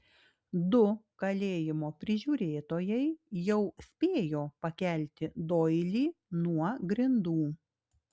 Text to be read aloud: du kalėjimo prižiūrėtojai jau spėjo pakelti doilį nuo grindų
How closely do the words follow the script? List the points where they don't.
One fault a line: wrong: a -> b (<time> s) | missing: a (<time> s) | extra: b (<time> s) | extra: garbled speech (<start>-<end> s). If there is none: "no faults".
no faults